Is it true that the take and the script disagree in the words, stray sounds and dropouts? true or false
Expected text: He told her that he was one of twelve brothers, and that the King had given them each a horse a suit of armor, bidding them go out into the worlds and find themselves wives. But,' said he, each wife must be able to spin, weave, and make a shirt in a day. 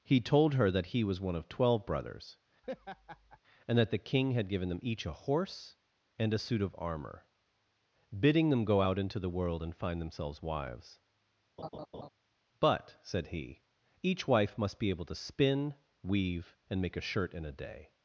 true